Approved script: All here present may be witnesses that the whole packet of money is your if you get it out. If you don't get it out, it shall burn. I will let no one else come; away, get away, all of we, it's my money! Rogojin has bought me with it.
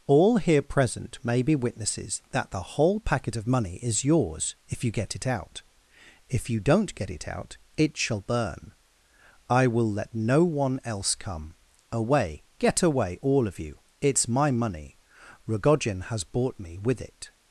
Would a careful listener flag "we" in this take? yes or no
yes